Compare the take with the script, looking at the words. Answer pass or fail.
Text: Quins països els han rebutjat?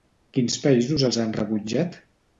pass